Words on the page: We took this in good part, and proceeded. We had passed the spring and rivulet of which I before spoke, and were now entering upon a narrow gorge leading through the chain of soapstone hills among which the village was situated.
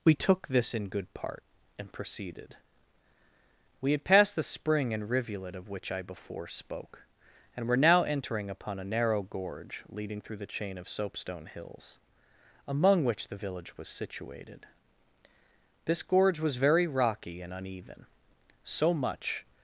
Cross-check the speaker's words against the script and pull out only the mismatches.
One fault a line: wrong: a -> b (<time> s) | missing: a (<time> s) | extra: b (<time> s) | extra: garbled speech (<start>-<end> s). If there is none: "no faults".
extra: This gorge was very rocky and uneven so much (15.9 s)